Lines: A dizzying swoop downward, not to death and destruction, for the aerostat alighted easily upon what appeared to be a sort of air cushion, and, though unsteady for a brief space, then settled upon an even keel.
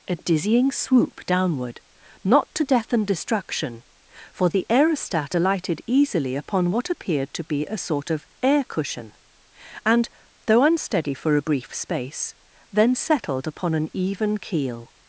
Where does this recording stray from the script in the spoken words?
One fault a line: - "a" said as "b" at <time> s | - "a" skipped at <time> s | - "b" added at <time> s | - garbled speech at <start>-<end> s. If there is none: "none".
none